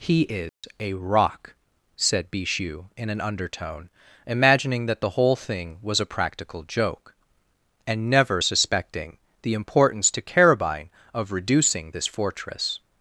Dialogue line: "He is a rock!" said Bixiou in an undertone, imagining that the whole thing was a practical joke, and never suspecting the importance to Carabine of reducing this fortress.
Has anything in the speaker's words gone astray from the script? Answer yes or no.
no